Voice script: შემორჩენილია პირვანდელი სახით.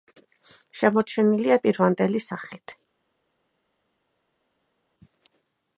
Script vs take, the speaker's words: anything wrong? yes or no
no